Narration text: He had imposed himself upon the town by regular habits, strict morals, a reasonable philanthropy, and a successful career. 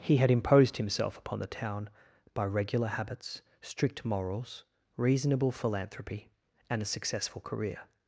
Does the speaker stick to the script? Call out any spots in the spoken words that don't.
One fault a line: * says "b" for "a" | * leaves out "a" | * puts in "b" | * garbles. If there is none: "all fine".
* leaves out "a"